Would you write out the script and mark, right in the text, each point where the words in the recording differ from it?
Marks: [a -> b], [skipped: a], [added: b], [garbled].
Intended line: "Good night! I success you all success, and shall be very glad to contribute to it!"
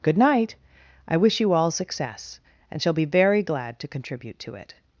"Good night! I [success -> wish] you all success, and shall be very glad to contribute to it!"